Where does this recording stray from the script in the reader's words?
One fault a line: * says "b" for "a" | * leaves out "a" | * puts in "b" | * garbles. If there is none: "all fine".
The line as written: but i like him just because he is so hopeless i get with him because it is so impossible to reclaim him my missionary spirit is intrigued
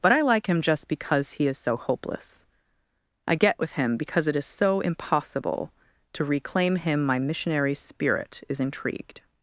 all fine